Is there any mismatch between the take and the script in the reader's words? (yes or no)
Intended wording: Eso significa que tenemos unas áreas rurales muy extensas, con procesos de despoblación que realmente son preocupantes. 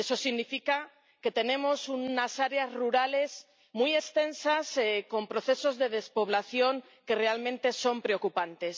no